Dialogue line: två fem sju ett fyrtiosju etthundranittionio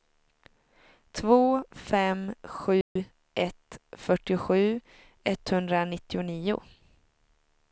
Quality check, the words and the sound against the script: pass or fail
fail